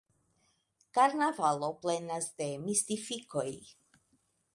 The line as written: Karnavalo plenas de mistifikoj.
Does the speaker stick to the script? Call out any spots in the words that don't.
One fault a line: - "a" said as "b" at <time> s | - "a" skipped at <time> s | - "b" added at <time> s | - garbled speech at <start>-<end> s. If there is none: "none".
none